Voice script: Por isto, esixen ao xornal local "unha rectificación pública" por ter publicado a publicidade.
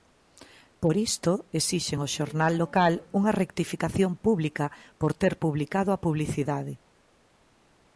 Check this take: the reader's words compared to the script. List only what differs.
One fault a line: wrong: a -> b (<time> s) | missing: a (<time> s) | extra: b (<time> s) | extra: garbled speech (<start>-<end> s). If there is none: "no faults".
no faults